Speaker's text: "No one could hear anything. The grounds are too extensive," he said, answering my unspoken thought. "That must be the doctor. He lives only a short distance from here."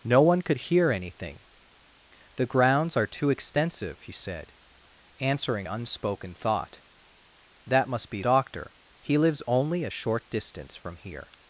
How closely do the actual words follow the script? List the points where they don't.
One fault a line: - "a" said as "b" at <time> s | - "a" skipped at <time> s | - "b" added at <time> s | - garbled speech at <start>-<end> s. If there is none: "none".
- "my" skipped at 5.7 s
- "the" skipped at 8.2 s